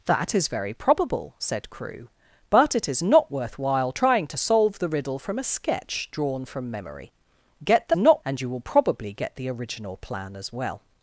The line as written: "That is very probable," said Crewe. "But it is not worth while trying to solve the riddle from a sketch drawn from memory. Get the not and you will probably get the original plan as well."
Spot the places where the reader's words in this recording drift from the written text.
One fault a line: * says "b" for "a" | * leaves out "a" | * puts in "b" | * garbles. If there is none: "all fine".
all fine